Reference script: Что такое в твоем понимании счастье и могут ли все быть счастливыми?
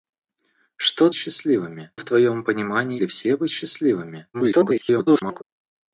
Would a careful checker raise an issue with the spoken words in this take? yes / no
yes